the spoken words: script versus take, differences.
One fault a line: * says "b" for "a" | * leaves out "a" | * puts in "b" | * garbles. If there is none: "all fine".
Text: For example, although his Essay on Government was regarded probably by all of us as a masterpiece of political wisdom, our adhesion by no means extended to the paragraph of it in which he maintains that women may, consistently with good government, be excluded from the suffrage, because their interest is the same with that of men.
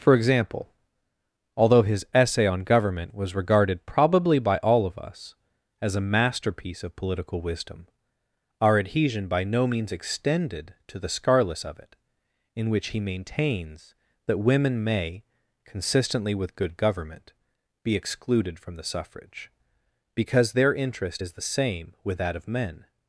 * says "scarless" for "paragraph"